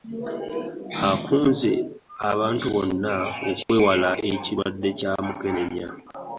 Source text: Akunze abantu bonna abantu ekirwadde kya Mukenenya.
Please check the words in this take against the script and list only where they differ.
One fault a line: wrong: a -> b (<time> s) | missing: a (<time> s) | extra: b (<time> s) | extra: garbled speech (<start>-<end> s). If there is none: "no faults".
wrong: abantu -> okwewala (3.5 s)